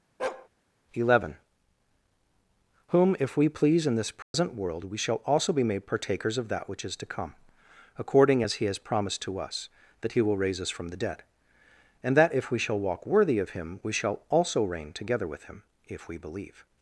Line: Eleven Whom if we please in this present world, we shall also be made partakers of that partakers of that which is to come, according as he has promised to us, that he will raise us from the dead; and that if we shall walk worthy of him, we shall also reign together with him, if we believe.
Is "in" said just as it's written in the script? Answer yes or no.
yes